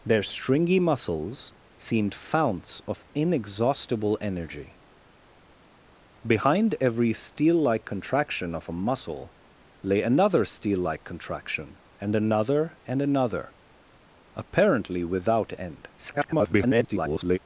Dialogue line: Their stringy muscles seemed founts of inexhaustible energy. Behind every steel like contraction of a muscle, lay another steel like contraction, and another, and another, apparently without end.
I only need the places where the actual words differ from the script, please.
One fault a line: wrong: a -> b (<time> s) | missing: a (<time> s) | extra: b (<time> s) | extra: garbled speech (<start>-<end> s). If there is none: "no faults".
extra: garbled speech (16.0-17.4 s)